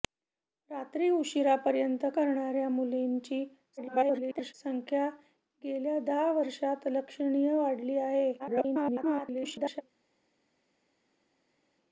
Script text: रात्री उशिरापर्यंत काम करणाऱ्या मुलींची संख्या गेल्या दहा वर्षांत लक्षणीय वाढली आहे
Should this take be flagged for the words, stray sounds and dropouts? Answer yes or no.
yes